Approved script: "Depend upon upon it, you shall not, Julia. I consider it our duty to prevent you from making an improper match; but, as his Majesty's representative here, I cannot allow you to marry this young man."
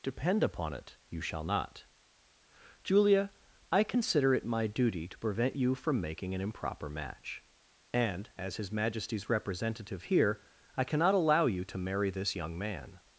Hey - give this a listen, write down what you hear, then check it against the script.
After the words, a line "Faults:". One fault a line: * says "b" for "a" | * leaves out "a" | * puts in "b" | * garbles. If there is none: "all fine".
"Depend upon it, you shall not, Julia. I consider it my duty to prevent you from making an improper match; and, as his Majesty's representative here, I cannot allow you to marry this young man."
Faults:
* leaves out "upon"
* says "my" for "our"
* says "and" for "but"